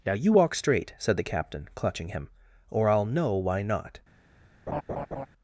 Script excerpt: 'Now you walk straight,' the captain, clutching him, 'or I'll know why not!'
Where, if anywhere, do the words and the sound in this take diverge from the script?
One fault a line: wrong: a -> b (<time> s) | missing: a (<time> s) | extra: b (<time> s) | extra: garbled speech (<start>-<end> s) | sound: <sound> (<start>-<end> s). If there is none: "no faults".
extra: said (1.0 s)
sound: laugh (4.7-5.3 s)